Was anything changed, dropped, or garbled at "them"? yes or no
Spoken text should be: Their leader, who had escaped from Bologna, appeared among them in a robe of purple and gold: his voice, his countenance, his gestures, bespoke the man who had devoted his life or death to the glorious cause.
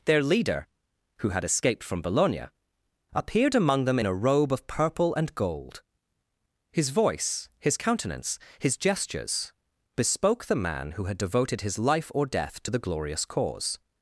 no